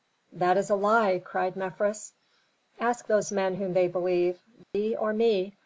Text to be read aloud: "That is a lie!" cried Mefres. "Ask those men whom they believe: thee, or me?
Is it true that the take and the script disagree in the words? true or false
false